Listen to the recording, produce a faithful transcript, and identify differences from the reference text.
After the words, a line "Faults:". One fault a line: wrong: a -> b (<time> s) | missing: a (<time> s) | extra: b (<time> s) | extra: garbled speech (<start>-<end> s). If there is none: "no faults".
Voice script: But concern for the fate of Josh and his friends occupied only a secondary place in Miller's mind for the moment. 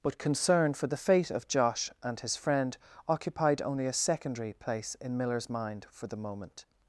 But concern for the fate of Josh and his friend occupied only a secondary place in Miller's mind for the moment.
Faults:
wrong: friends -> friend (2.4 s)